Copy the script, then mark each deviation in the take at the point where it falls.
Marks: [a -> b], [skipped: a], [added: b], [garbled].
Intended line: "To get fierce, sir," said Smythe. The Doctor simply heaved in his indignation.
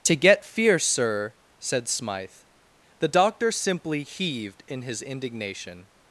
"To get fierce, sir," said Smythe. The Doctor simply heaved in his indignation.